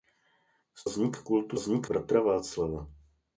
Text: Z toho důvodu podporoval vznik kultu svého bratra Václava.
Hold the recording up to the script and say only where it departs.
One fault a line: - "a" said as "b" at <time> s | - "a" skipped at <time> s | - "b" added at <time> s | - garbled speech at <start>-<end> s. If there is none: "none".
- "toho důvodu podporoval" skipped at 0.8 s
- "svého" said as "vznik" at 1.5 s